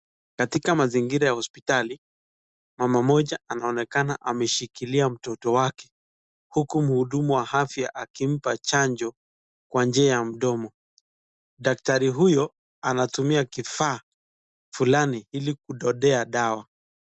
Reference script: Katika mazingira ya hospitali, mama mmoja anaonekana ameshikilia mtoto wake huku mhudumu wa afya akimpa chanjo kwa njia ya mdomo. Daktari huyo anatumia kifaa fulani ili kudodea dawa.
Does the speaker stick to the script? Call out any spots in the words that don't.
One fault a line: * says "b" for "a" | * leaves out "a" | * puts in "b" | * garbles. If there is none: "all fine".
all fine